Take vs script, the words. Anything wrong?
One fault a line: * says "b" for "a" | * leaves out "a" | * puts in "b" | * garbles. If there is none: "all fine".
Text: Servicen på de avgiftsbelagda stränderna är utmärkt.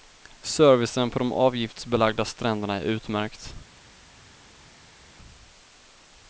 all fine